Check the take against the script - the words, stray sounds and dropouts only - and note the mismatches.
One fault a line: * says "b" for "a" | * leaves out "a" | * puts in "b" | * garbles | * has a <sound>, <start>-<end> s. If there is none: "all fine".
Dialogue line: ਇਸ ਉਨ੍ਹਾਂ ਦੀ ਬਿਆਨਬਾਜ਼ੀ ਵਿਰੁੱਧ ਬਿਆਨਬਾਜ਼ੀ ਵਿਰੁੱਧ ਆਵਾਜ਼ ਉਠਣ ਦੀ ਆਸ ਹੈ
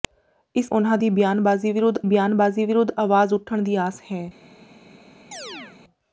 * has a chirp, 5.3-5.8 s